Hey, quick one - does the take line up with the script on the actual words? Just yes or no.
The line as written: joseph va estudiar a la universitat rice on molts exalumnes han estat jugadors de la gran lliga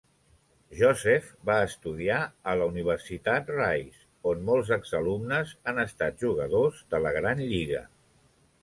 yes